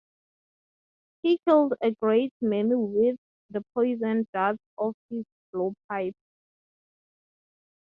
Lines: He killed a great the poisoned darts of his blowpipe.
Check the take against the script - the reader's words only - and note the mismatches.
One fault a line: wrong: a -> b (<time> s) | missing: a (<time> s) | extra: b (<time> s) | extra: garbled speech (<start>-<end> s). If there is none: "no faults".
extra: many with (2.4 s)